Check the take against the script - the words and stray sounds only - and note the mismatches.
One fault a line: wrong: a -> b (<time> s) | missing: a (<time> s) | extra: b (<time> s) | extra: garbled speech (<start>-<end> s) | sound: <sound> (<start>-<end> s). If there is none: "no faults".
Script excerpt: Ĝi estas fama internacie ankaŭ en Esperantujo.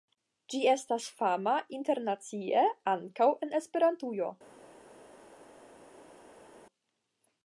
no faults